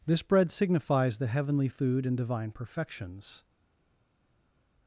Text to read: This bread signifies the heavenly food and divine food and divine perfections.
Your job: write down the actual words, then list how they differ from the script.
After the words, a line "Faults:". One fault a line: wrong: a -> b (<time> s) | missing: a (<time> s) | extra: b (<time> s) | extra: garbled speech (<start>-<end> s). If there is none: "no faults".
This bread signifies the heavenly food and divine perfections.
Faults:
missing: food and divine (2.5 s)